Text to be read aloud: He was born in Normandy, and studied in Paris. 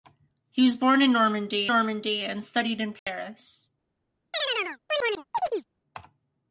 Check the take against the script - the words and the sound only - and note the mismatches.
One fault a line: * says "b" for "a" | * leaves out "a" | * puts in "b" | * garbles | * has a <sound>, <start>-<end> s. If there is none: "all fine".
* puts in "Normandy"
* has a dropout, 3.0-3.1 s
* has a chirp, 4.3-5.7 s